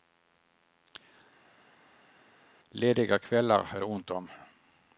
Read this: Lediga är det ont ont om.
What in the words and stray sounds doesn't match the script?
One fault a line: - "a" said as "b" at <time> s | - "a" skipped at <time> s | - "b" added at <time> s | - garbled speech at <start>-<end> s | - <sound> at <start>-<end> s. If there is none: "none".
- "kvällar" added at 3.2 s
- "ont" skipped at 4.1 s